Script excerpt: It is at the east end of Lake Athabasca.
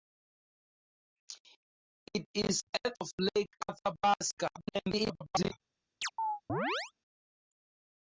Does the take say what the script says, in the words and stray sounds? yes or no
no